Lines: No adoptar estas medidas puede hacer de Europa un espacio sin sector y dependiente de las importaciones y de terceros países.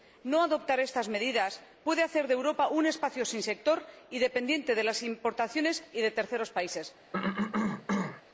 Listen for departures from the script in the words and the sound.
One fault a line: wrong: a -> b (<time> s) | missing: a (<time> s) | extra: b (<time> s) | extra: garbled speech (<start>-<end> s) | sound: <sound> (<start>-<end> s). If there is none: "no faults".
sound: cough (7.1-8.2 s)